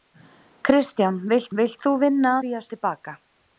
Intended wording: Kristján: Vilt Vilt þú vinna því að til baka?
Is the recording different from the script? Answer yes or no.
no